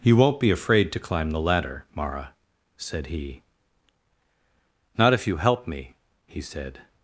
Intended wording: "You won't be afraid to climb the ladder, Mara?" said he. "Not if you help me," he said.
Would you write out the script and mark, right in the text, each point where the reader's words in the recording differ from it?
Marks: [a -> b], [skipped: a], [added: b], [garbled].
"You won't be afraid to climb the ladder, Mara?" said he. "Not if you help me," he said.